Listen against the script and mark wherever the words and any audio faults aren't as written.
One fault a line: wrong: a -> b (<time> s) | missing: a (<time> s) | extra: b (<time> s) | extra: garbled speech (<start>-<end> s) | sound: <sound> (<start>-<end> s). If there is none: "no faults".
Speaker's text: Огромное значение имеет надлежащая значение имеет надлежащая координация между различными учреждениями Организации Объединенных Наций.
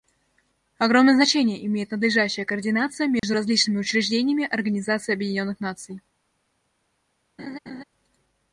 missing: значение имеет надлежащая (2.4 s)
sound: dropout (3.2-3.2 s)
sound: laugh (7.4-7.8 s)